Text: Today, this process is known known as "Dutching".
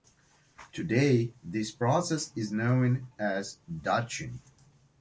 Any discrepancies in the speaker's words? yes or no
yes